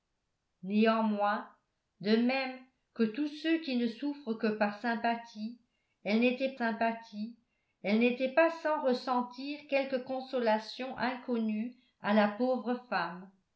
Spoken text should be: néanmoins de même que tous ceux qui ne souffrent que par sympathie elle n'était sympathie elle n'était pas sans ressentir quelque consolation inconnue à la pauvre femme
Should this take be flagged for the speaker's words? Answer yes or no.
no